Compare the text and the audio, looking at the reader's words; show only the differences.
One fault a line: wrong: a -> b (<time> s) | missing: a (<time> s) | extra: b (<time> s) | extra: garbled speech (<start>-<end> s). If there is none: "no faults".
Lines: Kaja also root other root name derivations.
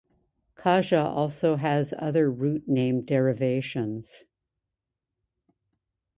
wrong: root -> has (1.6 s)